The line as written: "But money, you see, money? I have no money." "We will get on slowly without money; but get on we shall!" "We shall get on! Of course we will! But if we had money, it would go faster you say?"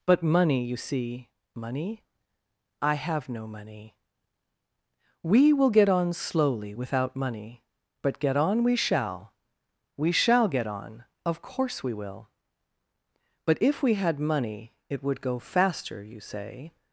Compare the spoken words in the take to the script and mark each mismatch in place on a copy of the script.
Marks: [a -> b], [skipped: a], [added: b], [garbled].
"But money, you see, money? I have no money." "We will get on slowly without money; but get on we shall!" "We shall get on! Of course we will! But if we had money, it would go faster you say?"